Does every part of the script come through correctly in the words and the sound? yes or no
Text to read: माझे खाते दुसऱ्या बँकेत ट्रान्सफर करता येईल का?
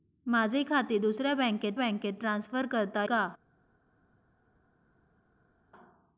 no